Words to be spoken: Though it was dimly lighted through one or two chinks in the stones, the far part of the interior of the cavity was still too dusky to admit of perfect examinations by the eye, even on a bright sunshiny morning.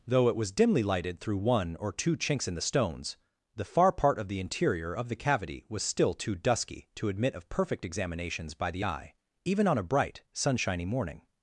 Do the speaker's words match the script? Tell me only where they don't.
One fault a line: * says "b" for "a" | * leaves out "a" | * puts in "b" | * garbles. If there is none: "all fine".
all fine